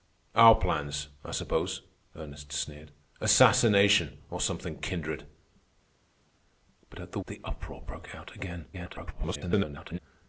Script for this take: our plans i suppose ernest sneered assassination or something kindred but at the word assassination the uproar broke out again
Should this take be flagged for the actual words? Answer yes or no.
yes